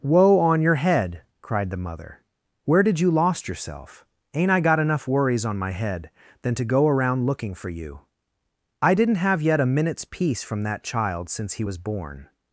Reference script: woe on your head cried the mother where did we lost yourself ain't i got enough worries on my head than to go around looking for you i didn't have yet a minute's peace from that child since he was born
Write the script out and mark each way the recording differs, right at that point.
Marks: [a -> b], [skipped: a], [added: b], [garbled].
woe on your head cried the mother where did [we -> you] lost yourself ain't i got enough worries on my head than to go around looking for you i didn't have yet a minute's peace from that child since he was born